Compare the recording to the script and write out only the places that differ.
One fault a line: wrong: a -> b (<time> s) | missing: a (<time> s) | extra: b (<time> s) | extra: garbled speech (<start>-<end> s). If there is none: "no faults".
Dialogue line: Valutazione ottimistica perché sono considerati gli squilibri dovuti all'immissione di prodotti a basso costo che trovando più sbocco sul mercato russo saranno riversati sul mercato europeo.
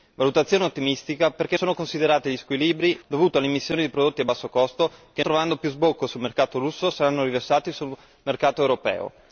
no faults